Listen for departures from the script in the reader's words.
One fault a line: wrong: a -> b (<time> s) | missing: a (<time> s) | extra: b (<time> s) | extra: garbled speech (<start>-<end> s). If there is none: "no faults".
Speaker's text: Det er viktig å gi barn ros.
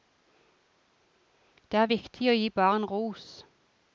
no faults